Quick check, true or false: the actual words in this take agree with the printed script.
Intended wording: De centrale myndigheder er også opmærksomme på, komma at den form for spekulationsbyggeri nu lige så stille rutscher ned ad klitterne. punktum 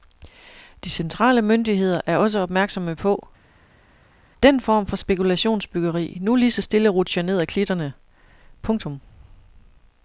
false